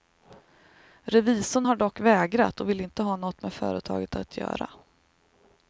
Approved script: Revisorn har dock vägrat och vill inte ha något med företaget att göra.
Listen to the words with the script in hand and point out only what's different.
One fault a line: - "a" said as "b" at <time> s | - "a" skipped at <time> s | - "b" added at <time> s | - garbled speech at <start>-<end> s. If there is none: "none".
none